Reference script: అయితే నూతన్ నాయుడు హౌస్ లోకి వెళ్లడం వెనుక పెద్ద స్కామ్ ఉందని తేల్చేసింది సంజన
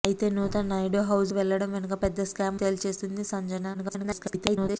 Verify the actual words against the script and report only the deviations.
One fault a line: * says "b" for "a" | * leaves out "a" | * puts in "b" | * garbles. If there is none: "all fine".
* leaves out "లోకి"
* leaves out "ఉందని"
* garbles